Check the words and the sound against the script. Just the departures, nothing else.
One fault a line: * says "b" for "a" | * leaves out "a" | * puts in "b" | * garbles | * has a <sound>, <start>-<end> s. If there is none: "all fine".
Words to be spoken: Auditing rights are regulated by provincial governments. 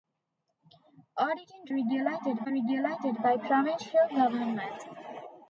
* says "regulated" for "rights"